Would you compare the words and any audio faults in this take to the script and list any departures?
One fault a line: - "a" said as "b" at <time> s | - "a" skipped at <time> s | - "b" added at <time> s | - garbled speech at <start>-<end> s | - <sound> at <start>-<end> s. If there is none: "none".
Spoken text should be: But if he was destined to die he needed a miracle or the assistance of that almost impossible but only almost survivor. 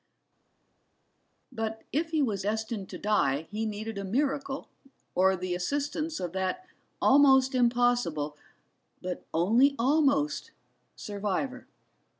none